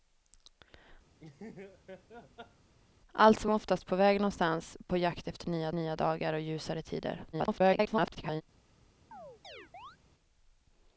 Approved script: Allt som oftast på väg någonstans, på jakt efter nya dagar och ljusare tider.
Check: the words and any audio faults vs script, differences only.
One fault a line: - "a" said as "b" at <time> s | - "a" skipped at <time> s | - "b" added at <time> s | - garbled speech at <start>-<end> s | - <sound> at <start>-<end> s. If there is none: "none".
- laugh at 1.2-2.7 s
- "nya" added at 5.7 s
- garbled speech at 7.3-8.4 s
- chirp at 9.1-10.0 s